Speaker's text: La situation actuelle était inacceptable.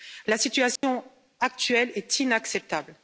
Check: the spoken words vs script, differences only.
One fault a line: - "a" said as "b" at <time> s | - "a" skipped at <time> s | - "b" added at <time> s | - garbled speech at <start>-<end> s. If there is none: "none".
- "était" said as "est" at 2.0 s